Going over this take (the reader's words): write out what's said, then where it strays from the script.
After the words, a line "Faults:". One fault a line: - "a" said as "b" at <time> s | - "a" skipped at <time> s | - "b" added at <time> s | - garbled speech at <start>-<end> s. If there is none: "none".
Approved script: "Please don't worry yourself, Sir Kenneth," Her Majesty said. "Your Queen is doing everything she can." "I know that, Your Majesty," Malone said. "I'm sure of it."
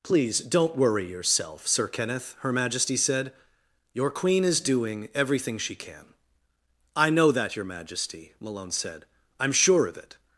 "Please don't worry yourself, Sir Kenneth," Her Majesty said. "Your Queen is doing everything she can." "I know that, Your Majesty," Malone said. "I'm sure of it."
Faults:
none